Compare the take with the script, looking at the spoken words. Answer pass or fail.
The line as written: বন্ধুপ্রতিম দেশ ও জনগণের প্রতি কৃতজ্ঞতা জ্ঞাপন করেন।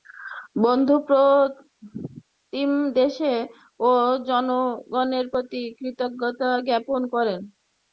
pass